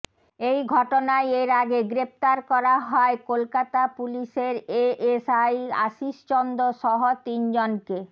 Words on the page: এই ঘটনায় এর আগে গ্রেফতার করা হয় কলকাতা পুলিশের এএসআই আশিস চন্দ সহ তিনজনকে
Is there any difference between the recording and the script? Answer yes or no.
no